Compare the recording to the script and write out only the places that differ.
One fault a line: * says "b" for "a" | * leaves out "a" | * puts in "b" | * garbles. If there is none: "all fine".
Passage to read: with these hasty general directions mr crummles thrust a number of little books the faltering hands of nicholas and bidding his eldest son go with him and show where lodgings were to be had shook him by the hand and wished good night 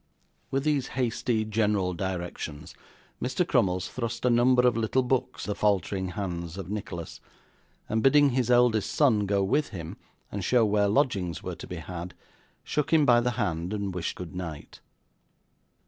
all fine